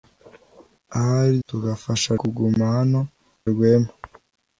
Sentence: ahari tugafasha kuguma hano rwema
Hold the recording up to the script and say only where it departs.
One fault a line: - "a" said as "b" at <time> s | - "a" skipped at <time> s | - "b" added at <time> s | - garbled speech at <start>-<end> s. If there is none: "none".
none